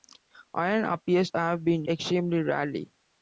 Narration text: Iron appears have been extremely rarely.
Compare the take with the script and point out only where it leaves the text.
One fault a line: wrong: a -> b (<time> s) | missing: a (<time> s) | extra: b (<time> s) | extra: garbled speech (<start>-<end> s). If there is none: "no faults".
no faults